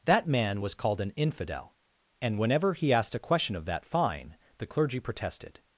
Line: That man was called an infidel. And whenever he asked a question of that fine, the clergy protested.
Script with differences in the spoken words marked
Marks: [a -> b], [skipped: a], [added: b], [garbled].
That man was called an infidel. And whenever he asked a question of that fine, the clergy protested.